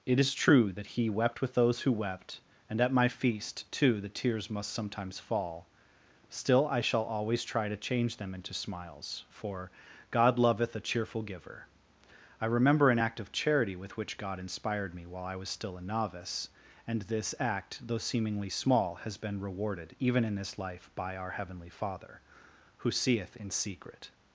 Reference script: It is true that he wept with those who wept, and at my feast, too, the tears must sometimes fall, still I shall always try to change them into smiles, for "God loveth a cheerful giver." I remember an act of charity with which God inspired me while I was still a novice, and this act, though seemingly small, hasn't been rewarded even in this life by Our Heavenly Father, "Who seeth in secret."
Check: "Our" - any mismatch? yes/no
no